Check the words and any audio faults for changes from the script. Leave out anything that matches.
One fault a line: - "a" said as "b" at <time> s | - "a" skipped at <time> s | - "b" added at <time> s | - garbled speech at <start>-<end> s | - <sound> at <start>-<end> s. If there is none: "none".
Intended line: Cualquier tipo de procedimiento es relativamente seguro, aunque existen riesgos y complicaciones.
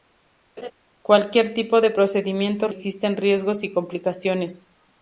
- laugh at 0.6-0.7 s
- "relativamente seguro aunque" skipped at 2.7 s